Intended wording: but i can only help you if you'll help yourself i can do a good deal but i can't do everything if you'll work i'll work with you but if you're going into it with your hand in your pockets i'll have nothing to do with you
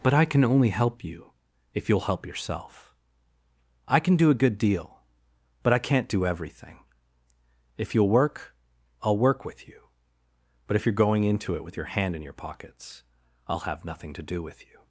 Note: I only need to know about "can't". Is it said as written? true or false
true